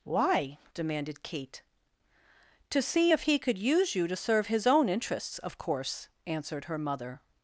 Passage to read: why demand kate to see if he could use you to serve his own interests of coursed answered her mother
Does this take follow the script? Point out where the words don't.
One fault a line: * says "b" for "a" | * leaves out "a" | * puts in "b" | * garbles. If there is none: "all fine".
* says "demanded" for "demand"
* says "course" for "coursed"